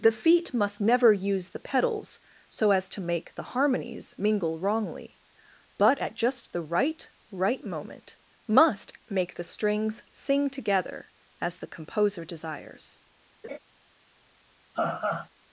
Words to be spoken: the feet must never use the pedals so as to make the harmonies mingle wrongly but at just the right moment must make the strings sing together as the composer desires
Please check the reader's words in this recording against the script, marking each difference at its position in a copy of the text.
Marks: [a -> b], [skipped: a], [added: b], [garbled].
the feet must never use the pedals so as to make the harmonies mingle wrongly but at just the right [added: right] moment must make the strings sing together as the composer desires